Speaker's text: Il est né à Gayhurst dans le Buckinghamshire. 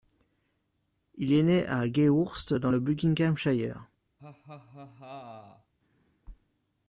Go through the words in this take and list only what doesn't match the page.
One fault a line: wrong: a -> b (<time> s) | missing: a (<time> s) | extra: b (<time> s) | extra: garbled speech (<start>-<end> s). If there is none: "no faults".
no faults